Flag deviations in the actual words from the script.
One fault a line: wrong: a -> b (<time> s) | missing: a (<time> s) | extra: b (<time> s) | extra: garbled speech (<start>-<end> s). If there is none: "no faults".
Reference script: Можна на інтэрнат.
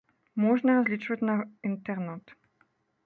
extra: разлічваць (0.8 s)